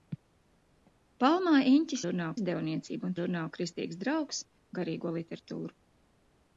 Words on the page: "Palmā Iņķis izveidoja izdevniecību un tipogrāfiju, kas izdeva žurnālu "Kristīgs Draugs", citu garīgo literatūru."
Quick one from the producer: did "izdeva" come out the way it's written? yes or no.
no